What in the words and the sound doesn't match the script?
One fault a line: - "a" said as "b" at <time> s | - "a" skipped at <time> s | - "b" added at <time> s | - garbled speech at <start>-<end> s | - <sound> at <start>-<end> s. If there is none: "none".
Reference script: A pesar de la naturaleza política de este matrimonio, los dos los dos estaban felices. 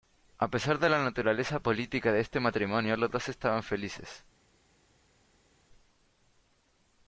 - "los dos" skipped at 3.3 s